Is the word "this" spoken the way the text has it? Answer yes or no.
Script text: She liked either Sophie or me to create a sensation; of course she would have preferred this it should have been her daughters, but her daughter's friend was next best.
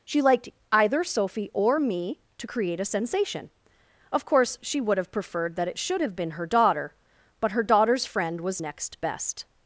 no